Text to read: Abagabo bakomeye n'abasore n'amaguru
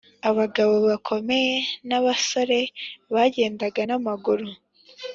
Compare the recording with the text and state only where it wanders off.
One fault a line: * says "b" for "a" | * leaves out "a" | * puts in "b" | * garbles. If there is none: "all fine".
* puts in "bagendaga"